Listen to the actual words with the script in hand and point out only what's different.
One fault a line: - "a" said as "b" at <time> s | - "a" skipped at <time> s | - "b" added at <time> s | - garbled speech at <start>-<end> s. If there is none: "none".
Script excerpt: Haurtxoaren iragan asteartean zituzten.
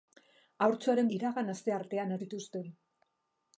none